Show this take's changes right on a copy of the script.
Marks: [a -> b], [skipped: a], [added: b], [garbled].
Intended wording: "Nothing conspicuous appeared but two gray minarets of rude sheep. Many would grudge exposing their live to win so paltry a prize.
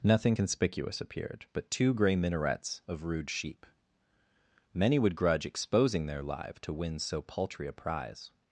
"Nothing conspicuous appeared but two gray minarets of rude sheep. Many would grudge exposing their live to win so paltry a prize.